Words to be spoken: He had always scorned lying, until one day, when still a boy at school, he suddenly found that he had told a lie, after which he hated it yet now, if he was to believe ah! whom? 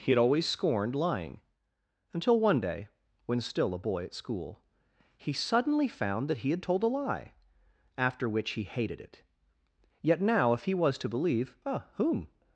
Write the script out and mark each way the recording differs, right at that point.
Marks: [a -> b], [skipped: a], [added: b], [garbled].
He had always scorned lying, until one day, when still a boy at school, he suddenly found that he had told a lie, after which he hated it yet now, if he was to believe ah! whom?